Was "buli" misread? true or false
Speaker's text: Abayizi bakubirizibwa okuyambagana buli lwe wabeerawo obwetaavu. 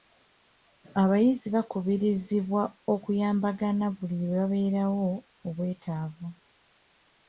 false